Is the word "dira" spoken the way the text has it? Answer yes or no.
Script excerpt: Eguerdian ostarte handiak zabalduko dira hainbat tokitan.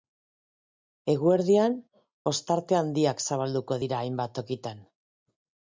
yes